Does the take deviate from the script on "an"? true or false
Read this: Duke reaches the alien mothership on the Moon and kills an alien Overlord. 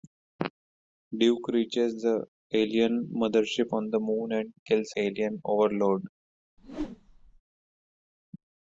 true